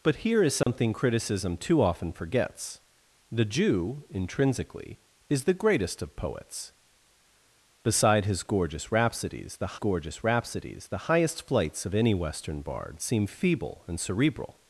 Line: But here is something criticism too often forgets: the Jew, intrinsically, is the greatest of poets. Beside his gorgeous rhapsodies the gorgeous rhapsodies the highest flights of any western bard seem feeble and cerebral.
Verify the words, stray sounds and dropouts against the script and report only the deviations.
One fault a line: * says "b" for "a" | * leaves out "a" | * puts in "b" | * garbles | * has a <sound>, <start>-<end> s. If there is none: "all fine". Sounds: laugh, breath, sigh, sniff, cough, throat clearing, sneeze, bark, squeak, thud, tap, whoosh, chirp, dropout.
* has a dropout, 0.6-0.7 s